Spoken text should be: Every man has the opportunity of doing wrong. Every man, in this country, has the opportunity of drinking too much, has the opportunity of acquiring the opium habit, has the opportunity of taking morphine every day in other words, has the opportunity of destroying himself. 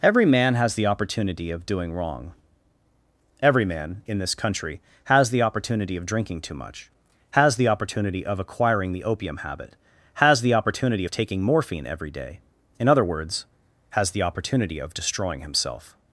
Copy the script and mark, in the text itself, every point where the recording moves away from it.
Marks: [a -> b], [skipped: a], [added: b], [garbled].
Every man has the opportunity of doing wrong. Every man, in this country, has the opportunity of drinking too much, has the opportunity of acquiring the opium habit, has the opportunity of taking morphine every day in other words, has the opportunity of destroying himself.